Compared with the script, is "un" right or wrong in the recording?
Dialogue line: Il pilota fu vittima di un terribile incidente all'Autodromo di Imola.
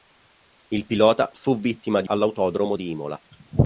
wrong